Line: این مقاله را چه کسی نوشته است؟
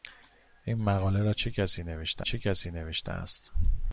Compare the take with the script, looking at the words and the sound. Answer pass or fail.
fail